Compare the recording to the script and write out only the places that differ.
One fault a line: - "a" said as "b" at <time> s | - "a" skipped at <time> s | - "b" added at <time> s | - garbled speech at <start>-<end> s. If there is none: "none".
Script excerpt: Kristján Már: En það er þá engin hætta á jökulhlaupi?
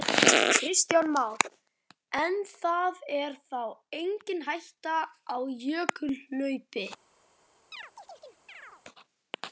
none